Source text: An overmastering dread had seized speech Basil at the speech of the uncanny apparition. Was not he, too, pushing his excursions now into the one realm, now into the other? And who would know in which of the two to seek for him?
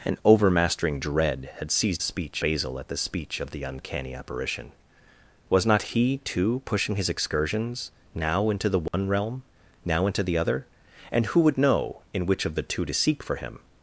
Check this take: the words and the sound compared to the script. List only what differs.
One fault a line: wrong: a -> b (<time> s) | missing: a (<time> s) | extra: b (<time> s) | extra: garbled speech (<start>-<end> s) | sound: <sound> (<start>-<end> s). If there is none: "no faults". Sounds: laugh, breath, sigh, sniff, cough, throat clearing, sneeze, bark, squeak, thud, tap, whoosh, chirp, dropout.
sound: dropout (8.9-8.9 s)